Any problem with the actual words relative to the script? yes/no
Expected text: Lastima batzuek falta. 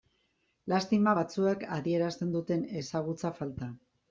yes